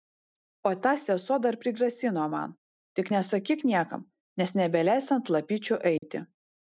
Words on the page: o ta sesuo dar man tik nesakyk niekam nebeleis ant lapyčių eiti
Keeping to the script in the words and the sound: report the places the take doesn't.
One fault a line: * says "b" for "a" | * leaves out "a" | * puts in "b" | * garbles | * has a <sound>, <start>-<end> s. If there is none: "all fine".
* puts in "prigrasino"
* puts in "nes"
* has a dropout, 6.0-6.0 s